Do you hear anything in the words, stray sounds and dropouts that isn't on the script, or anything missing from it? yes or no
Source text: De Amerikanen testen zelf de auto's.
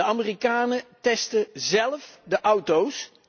no